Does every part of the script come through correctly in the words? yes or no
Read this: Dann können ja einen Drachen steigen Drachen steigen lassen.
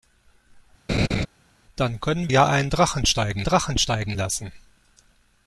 yes